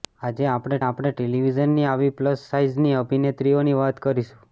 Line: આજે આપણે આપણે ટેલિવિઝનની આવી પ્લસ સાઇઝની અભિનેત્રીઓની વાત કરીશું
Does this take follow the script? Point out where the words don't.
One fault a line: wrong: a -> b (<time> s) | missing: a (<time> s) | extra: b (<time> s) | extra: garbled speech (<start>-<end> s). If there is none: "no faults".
no faults